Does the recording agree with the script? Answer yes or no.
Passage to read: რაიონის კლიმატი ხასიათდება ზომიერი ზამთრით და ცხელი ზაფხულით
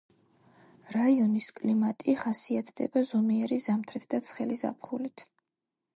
yes